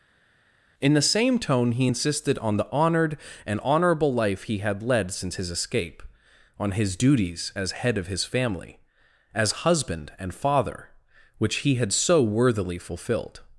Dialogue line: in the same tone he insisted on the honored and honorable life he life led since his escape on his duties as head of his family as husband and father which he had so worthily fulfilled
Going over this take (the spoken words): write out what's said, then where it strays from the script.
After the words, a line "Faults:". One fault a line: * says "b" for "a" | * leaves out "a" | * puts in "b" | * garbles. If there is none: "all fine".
in the same tone he insisted on the honored and honorable life he had led since his escape on his duties as head of his family as husband and father which he had so worthily fulfilled
Faults:
* says "had" for "life"